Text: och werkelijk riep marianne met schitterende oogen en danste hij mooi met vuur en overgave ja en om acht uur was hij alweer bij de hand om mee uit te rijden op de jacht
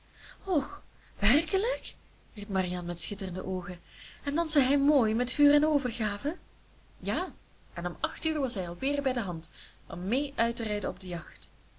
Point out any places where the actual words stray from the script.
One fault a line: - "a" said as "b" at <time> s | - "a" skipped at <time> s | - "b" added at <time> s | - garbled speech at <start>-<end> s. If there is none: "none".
none